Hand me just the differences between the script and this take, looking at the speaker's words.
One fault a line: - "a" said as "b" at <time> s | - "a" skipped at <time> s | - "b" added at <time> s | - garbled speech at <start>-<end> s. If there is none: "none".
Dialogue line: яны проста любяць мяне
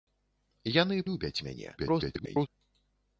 - "проста" skipped at 1.0 s
- garbled speech at 1.8-2.5 s